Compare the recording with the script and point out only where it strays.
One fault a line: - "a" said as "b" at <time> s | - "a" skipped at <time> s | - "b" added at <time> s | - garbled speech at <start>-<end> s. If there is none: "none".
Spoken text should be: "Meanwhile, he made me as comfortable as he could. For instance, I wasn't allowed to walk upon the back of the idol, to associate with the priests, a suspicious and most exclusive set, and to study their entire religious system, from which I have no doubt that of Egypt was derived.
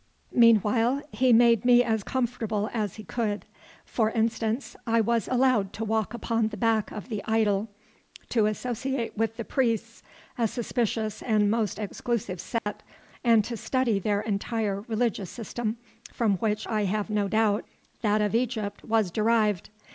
- "wasn't" said as "was" at 5.0 s